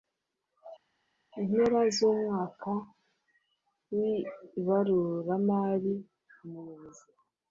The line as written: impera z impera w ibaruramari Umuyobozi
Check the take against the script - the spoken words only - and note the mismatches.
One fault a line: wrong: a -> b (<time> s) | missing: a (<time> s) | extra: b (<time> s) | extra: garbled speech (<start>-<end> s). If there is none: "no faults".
wrong: impera -> umwaka (2.1 s)